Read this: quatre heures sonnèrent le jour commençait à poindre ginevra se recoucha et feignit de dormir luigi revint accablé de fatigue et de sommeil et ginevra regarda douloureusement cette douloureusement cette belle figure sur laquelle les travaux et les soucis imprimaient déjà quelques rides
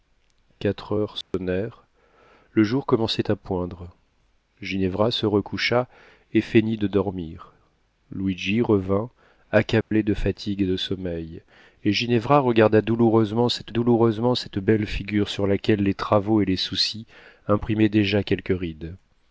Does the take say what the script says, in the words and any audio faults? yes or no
no